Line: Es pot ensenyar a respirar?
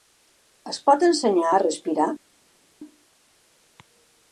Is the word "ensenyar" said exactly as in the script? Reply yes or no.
yes